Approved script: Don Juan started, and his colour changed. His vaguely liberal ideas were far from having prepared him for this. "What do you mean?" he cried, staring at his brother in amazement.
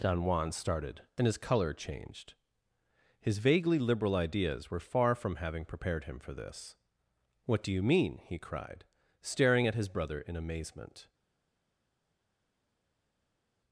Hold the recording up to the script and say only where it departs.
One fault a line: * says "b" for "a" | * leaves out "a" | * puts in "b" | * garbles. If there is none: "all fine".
all fine